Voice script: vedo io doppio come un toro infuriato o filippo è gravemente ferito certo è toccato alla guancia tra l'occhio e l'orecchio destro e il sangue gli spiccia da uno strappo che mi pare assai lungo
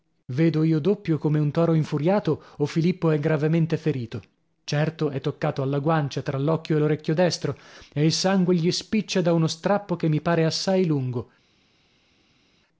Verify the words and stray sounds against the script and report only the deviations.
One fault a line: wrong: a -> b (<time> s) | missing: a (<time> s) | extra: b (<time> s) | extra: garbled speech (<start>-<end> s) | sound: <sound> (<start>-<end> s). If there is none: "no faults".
no faults